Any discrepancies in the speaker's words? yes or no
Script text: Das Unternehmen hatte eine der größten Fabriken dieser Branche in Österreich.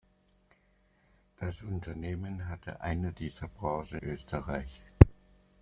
yes